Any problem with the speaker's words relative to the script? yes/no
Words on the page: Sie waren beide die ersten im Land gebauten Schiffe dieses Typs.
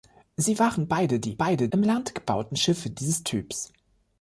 yes